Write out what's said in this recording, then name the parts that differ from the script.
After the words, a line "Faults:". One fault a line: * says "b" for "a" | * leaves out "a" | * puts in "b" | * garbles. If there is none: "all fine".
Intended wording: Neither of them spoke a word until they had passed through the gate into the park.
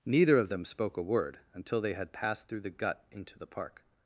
Neither of them spoke a word until they had passed through the gut into the park.
Faults:
* says "gut" for "gate"